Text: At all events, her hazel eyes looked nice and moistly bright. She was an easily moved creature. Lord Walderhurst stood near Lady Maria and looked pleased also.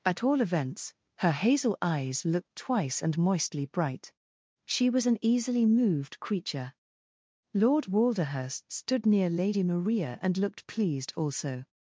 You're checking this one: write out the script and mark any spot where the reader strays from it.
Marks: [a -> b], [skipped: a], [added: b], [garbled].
At all events, her hazel eyes looked [nice -> twice] and moistly bright. She was an easily moved creature. Lord Walderhurst stood near Lady Maria and looked pleased also.